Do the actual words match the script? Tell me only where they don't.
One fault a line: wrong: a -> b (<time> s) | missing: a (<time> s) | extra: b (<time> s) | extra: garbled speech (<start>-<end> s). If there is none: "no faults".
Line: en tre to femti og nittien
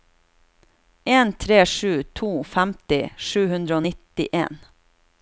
extra: sju (1.7 s)
extra: sju hundre (3.3 s)